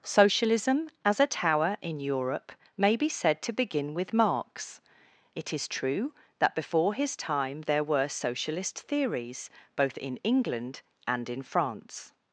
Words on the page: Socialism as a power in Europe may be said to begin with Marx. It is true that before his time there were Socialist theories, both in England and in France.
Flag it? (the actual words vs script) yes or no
yes